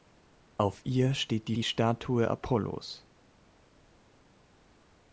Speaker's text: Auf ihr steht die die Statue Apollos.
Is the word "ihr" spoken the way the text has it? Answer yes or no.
yes